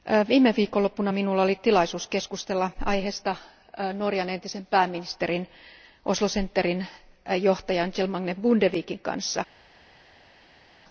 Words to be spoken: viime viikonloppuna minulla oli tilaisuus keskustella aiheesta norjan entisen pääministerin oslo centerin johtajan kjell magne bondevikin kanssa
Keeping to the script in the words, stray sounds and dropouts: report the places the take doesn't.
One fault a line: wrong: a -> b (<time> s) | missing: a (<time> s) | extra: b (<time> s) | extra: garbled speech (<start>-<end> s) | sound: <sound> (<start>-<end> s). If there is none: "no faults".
no faults